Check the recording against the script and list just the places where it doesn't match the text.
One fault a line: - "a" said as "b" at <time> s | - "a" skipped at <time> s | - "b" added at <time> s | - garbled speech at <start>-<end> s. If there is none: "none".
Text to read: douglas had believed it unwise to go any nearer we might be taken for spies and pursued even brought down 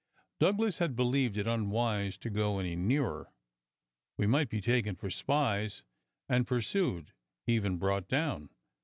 none